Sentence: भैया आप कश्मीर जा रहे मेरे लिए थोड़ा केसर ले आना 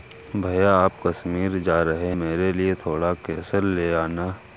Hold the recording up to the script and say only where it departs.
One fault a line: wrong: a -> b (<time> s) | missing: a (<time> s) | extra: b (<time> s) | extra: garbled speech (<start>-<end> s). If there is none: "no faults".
no faults